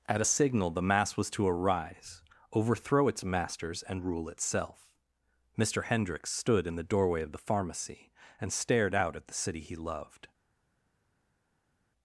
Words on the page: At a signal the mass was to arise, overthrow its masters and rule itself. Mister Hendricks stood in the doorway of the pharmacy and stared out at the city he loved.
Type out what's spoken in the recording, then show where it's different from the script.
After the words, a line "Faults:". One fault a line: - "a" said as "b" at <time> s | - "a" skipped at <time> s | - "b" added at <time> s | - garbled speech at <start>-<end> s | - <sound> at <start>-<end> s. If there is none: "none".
At a signal the mass was to arise, overthrow its masters and rule itself. Mister Hendricks stood in the doorway of the pharmacy and stared out at the city he loved.
Faults:
none